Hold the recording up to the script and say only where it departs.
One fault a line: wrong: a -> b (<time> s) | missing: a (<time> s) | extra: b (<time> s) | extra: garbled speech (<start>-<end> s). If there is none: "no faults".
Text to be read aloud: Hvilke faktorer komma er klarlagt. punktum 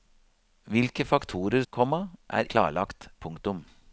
no faults